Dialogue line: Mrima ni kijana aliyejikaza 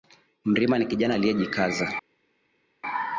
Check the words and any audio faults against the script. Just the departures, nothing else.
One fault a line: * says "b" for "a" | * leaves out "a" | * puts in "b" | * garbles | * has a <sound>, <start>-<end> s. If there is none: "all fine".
all fine